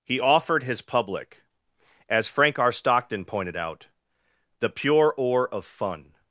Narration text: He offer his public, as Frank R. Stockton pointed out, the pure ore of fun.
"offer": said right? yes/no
no